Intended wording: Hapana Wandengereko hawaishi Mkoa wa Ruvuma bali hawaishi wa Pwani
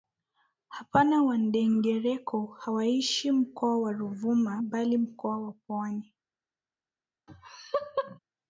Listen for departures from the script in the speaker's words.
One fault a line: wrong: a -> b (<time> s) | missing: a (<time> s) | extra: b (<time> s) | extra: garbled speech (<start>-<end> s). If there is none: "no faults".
wrong: hawaishi -> mkoa (5.0 s)